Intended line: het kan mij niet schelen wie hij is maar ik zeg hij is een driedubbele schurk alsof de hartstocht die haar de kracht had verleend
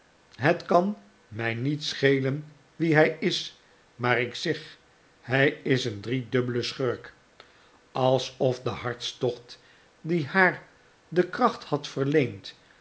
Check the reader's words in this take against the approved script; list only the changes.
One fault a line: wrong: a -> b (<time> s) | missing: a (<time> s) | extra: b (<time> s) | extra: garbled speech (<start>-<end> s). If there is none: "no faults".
no faults